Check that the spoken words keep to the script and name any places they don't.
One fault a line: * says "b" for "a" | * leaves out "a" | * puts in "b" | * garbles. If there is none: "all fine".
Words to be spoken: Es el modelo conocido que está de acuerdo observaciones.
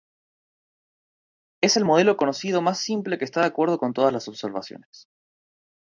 * puts in "más simple"
* puts in "con todas las"